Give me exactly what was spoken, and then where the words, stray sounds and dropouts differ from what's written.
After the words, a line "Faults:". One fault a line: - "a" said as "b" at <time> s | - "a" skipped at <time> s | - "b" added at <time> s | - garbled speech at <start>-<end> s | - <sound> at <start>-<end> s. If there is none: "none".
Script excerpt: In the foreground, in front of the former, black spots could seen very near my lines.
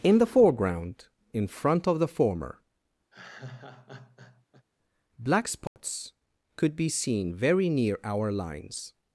In the foreground, in front of the former, black spots could be seen very near our lines.
Faults:
- laugh at 3.1-4.7 s
- dropout at 5.7-5.8 s
- "be" added at 6.7 s
- "my" said as "our" at 8.0 s